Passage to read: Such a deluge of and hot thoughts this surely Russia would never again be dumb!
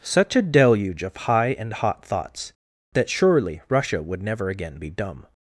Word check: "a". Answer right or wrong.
right